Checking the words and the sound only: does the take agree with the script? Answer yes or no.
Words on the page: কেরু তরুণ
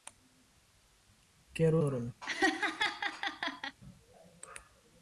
no